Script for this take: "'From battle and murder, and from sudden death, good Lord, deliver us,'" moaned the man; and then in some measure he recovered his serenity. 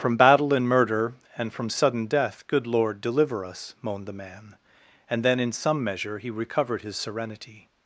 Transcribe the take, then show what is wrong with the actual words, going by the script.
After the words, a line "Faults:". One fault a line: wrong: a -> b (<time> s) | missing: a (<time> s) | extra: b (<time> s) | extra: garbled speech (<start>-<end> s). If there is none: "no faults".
"'From battle and murder, and from sudden death, good Lord, deliver us,'" moaned the man; and then in some measure he recovered his serenity.
Faults:
no faults